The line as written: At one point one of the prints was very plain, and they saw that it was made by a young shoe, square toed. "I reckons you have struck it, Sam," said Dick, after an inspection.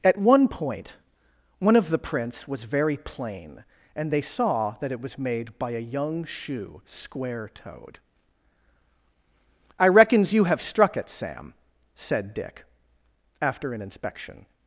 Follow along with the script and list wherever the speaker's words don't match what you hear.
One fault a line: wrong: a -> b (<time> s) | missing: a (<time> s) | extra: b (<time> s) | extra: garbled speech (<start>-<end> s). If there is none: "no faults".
no faults